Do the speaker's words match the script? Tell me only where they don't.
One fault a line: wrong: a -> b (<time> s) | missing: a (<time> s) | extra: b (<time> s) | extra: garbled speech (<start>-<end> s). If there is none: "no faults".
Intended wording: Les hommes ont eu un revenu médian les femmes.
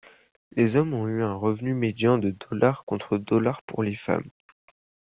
extra: de contre pour (2.2 s)